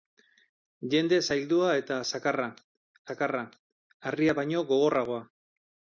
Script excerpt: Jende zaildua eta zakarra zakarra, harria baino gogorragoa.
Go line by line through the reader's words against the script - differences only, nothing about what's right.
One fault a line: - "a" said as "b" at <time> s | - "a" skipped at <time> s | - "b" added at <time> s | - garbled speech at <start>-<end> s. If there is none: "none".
none